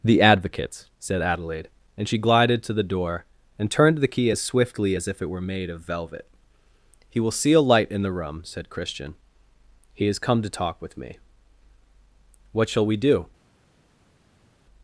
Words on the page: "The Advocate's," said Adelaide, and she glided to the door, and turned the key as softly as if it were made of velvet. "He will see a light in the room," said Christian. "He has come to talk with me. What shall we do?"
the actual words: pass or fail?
fail